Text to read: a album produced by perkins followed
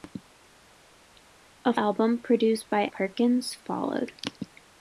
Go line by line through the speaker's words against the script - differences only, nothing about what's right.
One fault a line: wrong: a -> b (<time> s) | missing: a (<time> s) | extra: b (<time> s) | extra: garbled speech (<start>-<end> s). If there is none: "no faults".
no faults